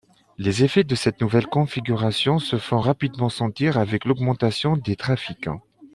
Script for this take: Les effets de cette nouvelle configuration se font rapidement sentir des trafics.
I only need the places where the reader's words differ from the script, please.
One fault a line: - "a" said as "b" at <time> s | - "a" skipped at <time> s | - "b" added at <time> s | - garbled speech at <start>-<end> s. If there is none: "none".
- "avec l'augmentation" added at 3.8 s